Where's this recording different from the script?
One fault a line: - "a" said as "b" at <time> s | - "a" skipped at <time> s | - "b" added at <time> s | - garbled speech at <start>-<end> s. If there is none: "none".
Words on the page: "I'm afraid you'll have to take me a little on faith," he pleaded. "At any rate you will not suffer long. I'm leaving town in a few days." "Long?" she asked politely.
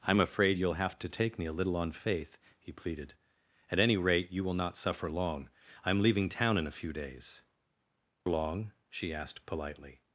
none